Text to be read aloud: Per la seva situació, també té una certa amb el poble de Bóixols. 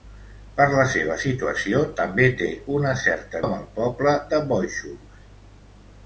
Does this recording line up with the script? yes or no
yes